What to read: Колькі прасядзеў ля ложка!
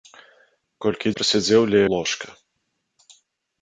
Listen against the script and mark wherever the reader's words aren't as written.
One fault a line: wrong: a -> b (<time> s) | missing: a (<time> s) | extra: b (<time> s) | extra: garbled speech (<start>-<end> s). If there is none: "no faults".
no faults